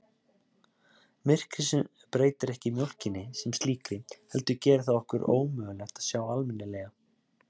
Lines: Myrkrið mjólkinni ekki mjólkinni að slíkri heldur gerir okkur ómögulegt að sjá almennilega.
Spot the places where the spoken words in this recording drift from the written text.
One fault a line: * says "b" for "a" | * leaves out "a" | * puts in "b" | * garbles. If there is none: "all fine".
* says "breytir" for "mjólkinni"
* says "sem" for "að"
* puts in "það"